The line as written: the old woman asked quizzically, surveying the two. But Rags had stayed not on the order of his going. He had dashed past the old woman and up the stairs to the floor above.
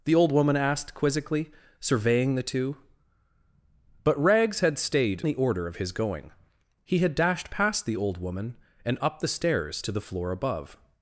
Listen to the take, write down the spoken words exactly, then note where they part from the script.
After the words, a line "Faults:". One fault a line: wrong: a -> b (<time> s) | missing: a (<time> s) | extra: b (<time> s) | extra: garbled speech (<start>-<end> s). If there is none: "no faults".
the old woman asked quizzically, surveying the two. But Rags had stayed the order of his going. He had dashed past the old woman and up the stairs to the floor above.
Faults:
missing: not on (5.2 s)